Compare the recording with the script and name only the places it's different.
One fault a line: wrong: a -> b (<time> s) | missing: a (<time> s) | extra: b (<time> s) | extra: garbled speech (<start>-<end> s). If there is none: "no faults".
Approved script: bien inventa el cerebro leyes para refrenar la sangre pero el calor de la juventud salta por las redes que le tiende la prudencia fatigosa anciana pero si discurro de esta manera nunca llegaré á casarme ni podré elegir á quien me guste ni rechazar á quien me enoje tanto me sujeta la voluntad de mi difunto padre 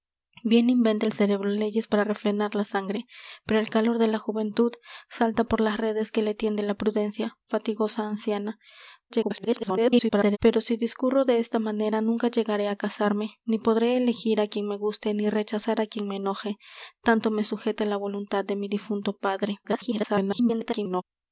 extra: garbled speech (9.1-10.4 s)
extra: garbled speech (19.6-21.0 s)